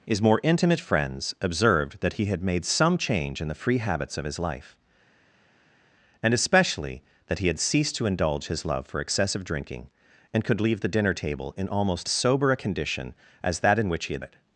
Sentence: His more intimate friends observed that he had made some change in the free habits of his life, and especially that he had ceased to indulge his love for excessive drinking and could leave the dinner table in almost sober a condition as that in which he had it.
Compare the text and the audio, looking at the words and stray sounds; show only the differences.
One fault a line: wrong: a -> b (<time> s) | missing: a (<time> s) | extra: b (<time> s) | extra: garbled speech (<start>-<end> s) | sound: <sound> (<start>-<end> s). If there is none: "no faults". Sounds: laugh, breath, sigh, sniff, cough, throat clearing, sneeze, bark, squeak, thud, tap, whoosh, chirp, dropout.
no faults